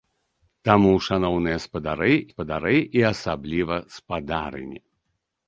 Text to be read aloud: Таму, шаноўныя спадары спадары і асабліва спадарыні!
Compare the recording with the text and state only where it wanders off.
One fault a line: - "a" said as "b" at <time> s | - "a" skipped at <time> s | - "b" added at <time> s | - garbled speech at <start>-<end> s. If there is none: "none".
none